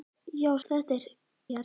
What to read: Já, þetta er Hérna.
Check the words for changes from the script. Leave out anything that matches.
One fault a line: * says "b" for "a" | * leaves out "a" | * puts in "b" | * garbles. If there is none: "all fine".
all fine